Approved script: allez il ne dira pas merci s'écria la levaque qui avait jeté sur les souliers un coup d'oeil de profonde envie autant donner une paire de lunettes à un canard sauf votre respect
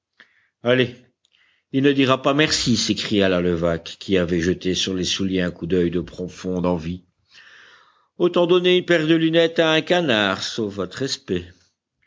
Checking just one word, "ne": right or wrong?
right